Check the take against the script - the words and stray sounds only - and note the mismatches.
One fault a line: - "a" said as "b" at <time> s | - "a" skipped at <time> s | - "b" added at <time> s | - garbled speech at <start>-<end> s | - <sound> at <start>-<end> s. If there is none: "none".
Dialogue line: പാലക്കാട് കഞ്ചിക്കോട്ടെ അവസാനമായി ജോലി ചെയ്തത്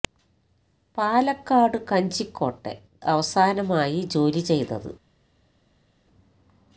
none